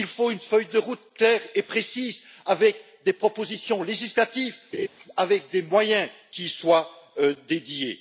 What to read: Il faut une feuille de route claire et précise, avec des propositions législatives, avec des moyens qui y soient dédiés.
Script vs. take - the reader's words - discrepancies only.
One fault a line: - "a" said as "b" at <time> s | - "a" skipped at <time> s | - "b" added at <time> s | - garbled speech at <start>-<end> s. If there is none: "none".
none